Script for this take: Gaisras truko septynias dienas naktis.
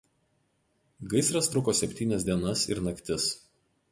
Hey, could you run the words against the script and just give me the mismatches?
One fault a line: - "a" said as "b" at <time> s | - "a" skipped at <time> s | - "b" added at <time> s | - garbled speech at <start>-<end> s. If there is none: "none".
- "ir" added at 2.7 s